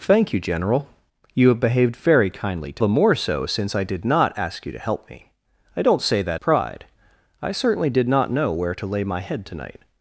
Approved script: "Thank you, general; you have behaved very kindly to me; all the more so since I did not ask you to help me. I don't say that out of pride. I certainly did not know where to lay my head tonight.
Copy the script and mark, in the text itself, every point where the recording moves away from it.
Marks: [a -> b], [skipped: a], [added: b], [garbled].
"Thank you, general; you have behaved very kindly to [skipped: me; all] the more so since I did not ask you to help me. I don't say that [skipped: out of] pride. I certainly did not know where to lay my head tonight.